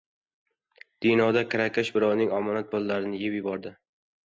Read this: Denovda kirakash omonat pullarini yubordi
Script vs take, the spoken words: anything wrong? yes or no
yes